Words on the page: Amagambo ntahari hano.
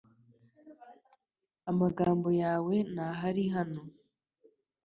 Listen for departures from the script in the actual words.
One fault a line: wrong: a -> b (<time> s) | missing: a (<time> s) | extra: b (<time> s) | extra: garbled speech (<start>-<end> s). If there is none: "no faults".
extra: yawe (2.4 s)